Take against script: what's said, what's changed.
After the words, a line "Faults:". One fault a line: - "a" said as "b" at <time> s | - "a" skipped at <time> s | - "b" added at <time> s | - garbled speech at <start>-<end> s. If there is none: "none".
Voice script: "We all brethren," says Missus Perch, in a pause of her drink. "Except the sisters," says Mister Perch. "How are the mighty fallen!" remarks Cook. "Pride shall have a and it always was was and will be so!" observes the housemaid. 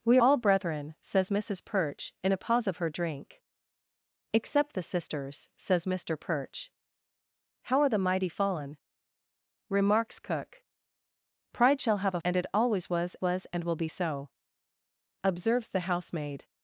"We all brethren," says Missus Perch, in a pause of her drink. "Except the sisters," says Mister Perch. "How are the mighty fallen!" remarks Cook. "Pride shall have a and it always was was and will be so!" observes the housemaid.
Faults:
none